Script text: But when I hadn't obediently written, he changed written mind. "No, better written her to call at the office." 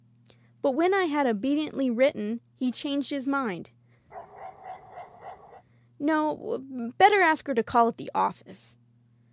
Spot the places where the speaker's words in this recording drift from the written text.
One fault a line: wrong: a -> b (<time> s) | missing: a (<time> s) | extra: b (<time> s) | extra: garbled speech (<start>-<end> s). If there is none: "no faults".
wrong: hadn't -> had (1.1 s)
wrong: written -> his (3.1 s)
wrong: written -> ask (7.2 s)